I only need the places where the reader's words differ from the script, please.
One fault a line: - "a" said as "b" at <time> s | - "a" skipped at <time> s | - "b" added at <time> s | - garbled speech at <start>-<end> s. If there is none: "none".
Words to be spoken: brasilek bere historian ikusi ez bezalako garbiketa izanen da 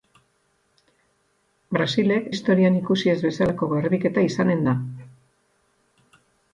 - "bere" skipped at 2.3 s